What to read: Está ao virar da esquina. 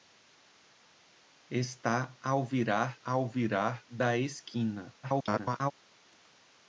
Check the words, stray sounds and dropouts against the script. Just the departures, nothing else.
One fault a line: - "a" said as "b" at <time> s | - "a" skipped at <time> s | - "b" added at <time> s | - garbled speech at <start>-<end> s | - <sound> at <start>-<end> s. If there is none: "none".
- "ao virar" added at 3.0 s
- garbled speech at 5.0-5.7 s